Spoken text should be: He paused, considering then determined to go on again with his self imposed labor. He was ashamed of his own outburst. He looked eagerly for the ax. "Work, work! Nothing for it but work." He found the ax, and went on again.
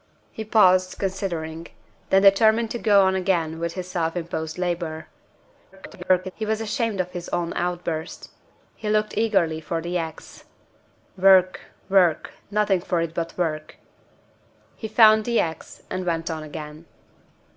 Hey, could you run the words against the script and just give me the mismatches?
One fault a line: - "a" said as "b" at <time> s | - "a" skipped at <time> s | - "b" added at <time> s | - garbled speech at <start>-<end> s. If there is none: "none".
- garbled speech at 5.7-6.3 s